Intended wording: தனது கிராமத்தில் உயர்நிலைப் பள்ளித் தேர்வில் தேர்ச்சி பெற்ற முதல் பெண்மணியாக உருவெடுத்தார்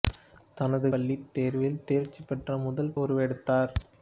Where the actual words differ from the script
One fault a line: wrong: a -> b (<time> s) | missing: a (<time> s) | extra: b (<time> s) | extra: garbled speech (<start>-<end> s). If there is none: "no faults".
missing: கிராமத்தில் உயர்நிலைப் (0.9 s)
missing: பெண்மணியாக (2.9 s)